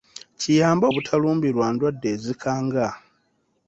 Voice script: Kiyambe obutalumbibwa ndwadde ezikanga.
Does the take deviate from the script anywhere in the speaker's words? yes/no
no